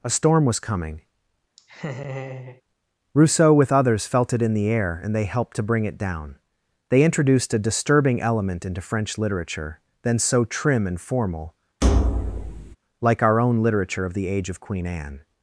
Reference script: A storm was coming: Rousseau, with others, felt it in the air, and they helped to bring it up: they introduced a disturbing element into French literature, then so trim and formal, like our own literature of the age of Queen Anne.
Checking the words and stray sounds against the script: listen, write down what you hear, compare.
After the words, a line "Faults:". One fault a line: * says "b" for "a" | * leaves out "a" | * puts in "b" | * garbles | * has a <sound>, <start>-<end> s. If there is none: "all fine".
A storm was coming: Rousseau, with others, felt it in the air, and they helped to bring it down: they introduced a disturbing element into French literature, then so trim and formal, like our own literature of the age of Queen Anne.
Faults:
* has a laugh, 1.6-2.6 s
* says "down" for "up"
* has a thud, 11.8-12.8 s